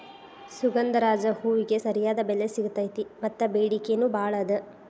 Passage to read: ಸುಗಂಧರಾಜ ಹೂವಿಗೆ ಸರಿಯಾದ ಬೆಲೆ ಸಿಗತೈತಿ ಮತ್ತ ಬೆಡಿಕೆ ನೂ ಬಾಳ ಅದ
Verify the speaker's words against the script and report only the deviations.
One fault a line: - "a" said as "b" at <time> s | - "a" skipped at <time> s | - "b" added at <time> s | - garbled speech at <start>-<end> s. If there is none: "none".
none